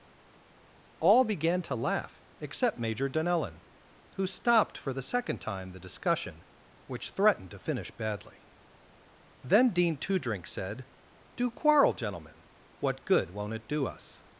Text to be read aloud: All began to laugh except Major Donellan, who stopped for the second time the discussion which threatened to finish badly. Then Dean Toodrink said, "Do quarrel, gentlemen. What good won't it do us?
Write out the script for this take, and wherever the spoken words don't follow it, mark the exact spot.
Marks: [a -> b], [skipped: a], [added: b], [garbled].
All began to laugh except Major Donellan, who stopped for the second time the discussion which threatened to finish badly. Then Dean Toodrink said, "Do quarrel, gentlemen. What good won't it do us?